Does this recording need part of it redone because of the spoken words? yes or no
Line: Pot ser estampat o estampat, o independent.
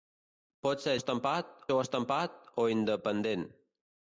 no